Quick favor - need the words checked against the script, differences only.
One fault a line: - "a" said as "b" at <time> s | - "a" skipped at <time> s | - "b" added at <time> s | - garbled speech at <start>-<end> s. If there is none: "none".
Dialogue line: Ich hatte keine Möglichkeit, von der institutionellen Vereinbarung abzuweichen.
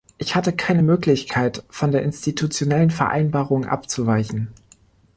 none